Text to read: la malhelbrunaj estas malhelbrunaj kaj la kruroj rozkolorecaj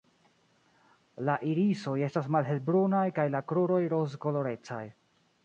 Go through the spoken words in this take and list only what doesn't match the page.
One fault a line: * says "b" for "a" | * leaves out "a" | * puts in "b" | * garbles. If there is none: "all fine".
* says "irisoj" for "malhelbrunaj"